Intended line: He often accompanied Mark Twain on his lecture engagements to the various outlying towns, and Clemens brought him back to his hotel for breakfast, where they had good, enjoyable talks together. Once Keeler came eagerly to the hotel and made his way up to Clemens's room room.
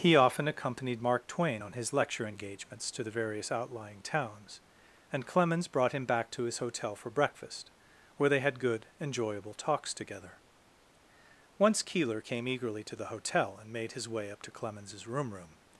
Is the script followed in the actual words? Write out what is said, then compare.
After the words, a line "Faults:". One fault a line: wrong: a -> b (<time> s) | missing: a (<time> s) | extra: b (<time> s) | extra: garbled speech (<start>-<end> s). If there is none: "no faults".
He often accompanied Mark Twain on his lecture engagements to the various outlying towns, and Clemens brought him back to his hotel for breakfast, where they had good, enjoyable talks together. Once Keeler came eagerly to the hotel and made his way up to Clemens's room room.
Faults:
no faults